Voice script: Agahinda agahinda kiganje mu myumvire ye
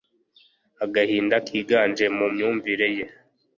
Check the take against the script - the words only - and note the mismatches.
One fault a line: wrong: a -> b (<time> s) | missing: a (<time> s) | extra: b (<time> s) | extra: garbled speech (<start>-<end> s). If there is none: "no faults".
missing: agahinda (1.4 s)